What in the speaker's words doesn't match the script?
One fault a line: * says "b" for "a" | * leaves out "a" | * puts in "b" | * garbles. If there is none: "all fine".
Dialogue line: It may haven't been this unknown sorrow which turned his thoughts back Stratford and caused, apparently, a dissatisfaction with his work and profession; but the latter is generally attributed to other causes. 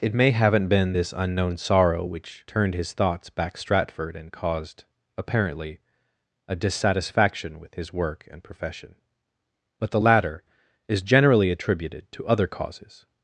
all fine